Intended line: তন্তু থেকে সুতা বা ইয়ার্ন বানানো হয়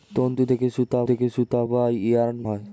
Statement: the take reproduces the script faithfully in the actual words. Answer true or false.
false